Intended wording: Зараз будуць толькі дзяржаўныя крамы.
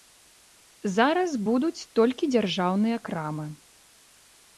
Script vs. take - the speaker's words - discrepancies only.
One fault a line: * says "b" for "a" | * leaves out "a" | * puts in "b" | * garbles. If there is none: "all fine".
all fine